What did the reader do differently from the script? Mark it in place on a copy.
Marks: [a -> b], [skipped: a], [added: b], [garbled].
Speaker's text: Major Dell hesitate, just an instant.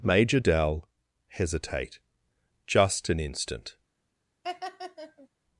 Major Dell hesitate, just an instant.